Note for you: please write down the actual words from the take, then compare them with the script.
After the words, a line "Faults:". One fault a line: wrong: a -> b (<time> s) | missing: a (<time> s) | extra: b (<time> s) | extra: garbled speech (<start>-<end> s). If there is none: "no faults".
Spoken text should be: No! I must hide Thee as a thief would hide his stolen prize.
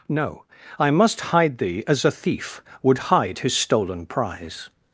No! I must hide Thee as a thief would hide his stolen prize.
Faults:
no faults